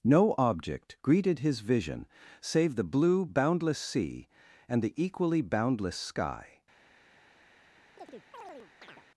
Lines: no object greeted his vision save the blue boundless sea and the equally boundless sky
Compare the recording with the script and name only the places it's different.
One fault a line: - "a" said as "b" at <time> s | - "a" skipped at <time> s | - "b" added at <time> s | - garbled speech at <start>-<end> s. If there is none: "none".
none